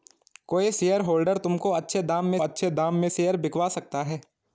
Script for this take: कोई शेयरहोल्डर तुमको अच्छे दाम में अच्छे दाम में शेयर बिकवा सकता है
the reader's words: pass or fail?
pass